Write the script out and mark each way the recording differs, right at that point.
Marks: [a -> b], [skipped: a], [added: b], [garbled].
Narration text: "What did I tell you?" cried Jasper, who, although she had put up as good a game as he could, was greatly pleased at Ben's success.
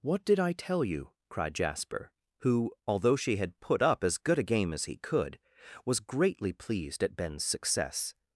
"What did I tell you?" cried Jasper, who, although she had put up as good a game as he could, was greatly pleased at Ben's success.